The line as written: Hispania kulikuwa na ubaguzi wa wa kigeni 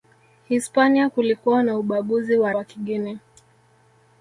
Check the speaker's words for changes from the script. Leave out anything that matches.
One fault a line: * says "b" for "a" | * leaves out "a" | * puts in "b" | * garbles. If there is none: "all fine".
all fine